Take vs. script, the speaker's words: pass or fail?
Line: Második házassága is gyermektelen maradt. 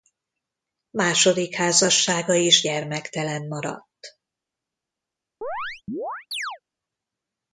pass